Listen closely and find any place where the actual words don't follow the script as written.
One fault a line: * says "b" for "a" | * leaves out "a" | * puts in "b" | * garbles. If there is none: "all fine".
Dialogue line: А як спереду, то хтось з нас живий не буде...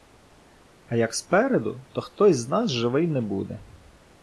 all fine